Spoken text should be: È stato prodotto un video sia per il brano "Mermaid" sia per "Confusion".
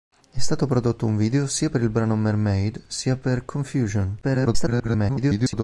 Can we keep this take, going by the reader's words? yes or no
no